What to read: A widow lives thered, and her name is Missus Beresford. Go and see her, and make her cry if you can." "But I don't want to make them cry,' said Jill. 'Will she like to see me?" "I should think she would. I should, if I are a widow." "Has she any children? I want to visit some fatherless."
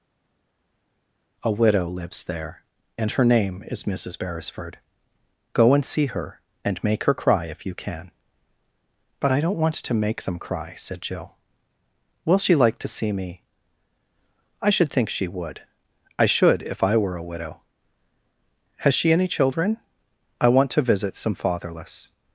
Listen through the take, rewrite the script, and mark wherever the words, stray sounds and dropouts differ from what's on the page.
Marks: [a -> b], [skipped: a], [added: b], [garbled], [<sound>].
A widow lives [thered, -> there] and her name is Missus Beresford. Go and see her, and make her cry if you can." "But I don't want to make them cry,' said Jill. 'Will she like to see me?" "I should think she would. I should, if I [are -> were] a widow." "Has she any children? I want to visit some fatherless."